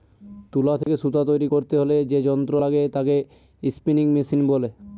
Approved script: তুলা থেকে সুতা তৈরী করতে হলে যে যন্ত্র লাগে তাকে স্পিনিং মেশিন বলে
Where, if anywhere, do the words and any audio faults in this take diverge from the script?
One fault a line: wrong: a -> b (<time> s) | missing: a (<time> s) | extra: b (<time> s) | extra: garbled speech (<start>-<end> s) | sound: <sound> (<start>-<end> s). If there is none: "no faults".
sound: dropout (0.8-0.9 s)